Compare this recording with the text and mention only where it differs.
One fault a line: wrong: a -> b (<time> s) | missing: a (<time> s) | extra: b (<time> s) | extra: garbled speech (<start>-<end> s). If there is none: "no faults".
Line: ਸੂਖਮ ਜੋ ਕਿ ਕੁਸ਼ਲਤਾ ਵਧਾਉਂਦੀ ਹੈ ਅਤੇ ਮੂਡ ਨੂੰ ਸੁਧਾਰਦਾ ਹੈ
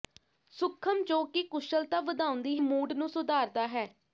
missing: ਹੈ ਅਤੇ (2.6 s)